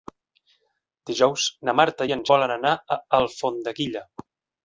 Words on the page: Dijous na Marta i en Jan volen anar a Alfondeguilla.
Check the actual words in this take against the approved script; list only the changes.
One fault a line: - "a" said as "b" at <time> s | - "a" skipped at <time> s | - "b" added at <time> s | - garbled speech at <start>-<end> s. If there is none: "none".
- "Jan" skipped at 2.2 s